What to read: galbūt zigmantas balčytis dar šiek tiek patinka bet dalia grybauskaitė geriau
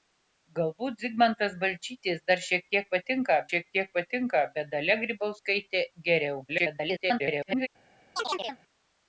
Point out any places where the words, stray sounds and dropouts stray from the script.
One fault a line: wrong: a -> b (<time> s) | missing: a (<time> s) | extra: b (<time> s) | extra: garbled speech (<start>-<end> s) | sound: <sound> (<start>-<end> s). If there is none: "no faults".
extra: šiek tiek patinka (3.5 s)
extra: garbled speech (6.5-7.7 s)
sound: chirp (8.2-8.6 s)